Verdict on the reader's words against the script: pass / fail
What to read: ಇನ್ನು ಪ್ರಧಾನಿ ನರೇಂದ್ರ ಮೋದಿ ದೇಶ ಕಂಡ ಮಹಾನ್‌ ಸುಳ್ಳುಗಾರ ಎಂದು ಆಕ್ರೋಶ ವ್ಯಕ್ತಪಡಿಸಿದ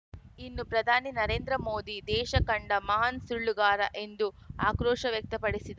pass